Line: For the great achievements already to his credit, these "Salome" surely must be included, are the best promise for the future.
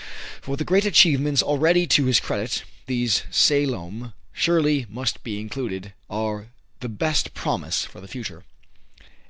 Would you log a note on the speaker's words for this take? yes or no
no